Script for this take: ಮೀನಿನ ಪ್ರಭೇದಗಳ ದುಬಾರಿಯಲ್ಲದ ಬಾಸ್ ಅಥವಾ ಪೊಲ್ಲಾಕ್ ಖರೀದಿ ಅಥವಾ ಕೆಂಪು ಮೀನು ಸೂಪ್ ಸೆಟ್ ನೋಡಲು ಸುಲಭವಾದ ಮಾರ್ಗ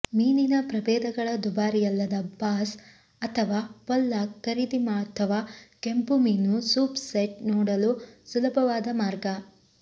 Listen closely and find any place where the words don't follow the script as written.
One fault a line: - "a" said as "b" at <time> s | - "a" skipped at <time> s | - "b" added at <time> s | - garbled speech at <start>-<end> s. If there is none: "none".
none